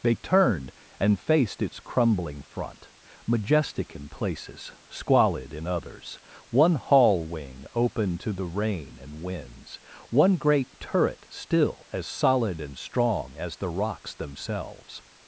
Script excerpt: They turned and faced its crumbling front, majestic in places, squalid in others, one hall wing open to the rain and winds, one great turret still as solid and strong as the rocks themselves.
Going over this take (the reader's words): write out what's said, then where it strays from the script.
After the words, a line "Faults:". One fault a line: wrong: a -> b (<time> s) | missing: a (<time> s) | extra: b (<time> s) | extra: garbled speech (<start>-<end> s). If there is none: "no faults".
They turned and faced its crumbling front, majestic in places, squalid in others, one hall wing open to the rain and winds, one great turret still as solid and strong as the rocks themselves.
Faults:
no faults